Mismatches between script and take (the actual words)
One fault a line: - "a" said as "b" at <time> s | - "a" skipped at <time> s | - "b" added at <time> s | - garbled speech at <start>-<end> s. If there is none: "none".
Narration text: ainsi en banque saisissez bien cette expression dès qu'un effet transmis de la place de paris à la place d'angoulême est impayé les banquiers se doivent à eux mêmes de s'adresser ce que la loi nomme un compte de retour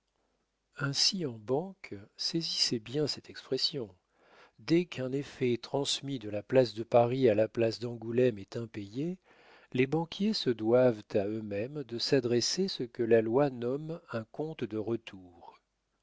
none